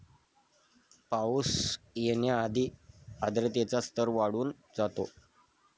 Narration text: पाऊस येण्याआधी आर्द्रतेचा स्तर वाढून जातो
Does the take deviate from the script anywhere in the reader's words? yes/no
no